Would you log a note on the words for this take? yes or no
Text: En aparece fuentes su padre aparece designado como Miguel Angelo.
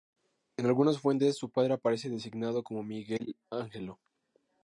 yes